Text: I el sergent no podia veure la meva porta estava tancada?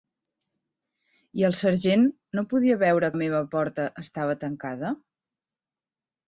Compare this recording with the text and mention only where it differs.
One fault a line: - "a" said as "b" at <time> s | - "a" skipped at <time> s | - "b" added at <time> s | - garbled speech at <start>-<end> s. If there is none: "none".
none